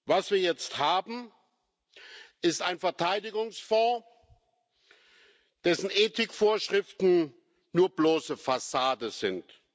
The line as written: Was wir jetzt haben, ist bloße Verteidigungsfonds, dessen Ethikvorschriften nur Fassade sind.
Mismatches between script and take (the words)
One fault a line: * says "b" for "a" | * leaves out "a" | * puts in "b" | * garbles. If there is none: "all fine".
* says "ein" for "bloße"
* puts in "bloße"